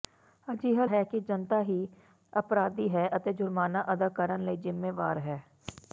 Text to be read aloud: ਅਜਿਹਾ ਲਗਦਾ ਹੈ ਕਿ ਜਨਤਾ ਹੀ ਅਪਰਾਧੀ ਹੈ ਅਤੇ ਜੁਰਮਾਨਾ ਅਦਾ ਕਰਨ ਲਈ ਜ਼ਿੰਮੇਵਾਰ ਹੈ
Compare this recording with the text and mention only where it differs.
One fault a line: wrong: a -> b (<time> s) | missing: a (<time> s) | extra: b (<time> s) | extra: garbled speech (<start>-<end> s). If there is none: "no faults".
missing: ਲਗਦਾ (0.8 s)